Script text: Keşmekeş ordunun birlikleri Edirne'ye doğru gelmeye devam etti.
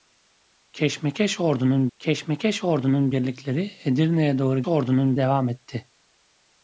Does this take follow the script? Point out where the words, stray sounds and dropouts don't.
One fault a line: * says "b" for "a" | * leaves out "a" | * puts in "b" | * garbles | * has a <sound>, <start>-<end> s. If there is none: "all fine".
* puts in "keşmekeş ordunun"
* says "ordunun" for "gelmeye"